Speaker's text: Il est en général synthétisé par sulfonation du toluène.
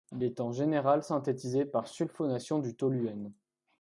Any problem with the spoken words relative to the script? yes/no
no